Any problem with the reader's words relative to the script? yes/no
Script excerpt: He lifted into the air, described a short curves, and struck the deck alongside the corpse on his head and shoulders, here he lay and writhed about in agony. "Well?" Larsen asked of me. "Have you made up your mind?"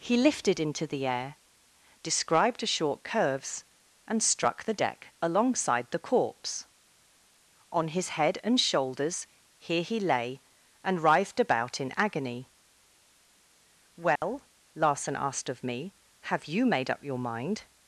no